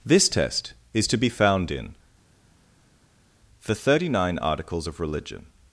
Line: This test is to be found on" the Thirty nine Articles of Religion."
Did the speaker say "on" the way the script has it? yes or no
no